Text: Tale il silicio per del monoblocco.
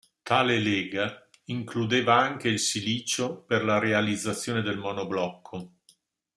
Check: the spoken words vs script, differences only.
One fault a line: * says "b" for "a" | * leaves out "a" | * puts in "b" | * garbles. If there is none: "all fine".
* puts in "lega includeva anche"
* puts in "la realizzazione"